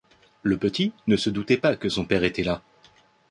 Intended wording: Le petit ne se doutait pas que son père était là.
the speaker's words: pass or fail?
pass